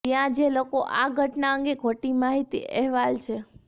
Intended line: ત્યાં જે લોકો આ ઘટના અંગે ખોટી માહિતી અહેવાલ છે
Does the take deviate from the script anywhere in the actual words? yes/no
no